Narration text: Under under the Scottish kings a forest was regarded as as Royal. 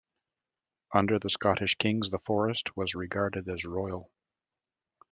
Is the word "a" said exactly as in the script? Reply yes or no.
no